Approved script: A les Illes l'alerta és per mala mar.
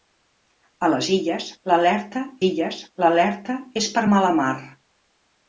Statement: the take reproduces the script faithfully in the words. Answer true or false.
false